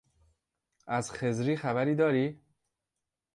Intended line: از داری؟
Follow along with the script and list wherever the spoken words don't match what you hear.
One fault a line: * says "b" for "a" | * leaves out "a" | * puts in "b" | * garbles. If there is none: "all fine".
* puts in "خضری خبری"